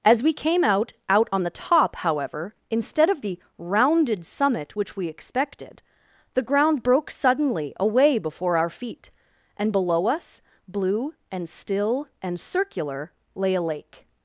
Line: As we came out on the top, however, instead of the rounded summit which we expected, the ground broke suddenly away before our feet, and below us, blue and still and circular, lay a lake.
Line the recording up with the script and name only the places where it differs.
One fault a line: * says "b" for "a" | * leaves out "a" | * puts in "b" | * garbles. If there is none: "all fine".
* puts in "out"